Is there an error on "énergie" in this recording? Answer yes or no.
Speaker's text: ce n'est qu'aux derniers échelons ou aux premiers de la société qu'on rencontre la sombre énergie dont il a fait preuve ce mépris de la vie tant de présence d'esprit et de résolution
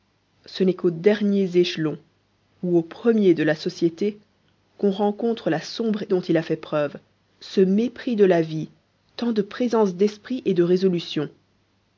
yes